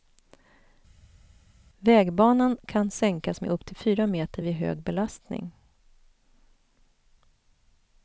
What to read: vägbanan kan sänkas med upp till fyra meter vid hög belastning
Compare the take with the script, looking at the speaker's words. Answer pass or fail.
pass